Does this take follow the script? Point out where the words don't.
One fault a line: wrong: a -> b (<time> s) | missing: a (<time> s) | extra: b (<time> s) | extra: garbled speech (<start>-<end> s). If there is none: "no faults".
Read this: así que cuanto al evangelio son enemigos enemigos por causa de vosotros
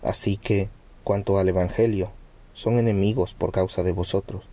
missing: enemigos (3.3 s)